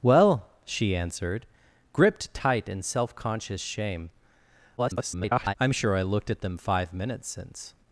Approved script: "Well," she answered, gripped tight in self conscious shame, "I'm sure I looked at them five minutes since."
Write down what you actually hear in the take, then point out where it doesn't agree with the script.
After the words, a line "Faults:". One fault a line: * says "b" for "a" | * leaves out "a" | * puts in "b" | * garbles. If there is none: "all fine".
"Well," she answered, gripped tight in self conscious shame, [garbled] "I'm sure I looked at them five minutes since."
Faults:
* garbles